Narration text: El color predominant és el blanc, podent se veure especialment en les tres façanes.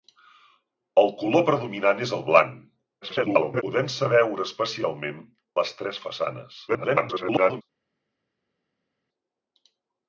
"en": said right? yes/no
no